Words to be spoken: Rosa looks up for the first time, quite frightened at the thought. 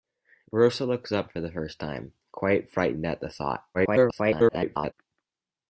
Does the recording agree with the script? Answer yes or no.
no